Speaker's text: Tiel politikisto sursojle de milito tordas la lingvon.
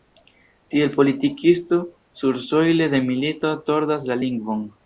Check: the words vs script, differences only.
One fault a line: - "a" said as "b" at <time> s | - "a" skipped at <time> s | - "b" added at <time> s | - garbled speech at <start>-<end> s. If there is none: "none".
none